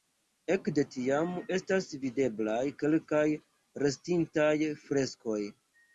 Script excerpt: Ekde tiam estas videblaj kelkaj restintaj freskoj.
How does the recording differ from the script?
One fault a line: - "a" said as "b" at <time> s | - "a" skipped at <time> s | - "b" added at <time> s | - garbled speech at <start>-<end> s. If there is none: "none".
none